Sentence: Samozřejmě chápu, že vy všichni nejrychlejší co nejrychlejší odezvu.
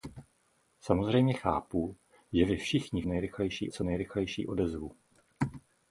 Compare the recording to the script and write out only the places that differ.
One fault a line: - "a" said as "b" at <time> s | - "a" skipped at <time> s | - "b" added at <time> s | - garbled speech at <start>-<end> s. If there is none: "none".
none